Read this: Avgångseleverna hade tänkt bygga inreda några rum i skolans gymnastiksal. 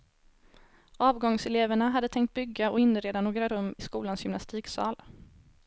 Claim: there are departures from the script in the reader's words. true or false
true